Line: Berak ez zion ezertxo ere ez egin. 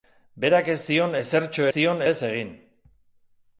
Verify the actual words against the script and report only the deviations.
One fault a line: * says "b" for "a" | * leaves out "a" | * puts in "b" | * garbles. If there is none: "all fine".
* says "zion" for "ere"